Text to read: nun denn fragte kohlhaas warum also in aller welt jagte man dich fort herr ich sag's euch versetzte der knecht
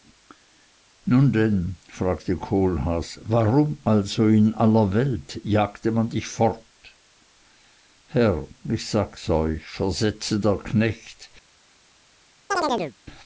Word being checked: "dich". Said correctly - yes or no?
yes